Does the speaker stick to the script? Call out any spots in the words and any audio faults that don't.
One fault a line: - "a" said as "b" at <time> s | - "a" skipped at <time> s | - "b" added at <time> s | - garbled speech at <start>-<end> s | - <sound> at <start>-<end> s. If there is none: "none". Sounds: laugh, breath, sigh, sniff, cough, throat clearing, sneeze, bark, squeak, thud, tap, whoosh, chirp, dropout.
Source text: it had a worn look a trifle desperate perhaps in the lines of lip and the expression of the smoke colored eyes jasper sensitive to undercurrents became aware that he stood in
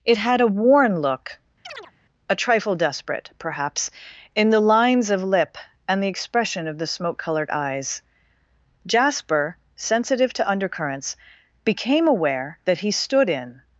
- chirp at 1.6-1.9 s